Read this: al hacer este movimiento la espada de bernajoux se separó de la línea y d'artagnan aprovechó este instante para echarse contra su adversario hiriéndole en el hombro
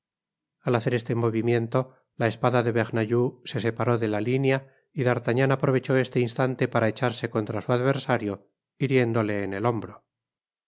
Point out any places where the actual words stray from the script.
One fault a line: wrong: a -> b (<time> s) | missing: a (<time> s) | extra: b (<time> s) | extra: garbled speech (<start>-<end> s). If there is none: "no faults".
no faults